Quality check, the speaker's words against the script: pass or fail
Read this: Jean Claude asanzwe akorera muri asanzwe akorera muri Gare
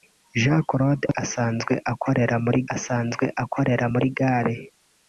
pass